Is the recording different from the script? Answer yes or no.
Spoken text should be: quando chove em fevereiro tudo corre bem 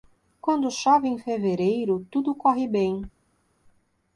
no